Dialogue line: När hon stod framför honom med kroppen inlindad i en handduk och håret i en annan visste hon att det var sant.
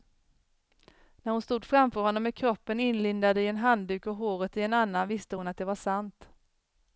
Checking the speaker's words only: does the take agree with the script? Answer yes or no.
yes